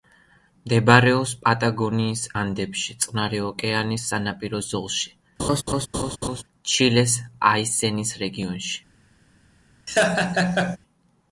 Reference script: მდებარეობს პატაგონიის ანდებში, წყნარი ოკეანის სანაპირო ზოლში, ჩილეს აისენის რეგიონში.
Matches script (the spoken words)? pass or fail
pass